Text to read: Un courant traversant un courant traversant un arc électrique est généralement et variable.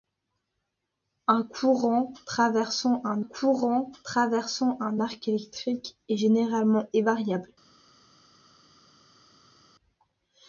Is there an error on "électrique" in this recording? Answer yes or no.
no